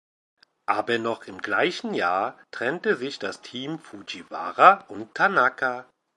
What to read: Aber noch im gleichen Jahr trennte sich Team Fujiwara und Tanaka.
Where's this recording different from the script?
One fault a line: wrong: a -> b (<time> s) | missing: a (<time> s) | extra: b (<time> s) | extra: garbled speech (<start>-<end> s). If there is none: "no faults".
extra: das (3.2 s)